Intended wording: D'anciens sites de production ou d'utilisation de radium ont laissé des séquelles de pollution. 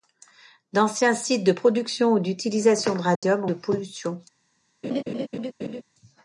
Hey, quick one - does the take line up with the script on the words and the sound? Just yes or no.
no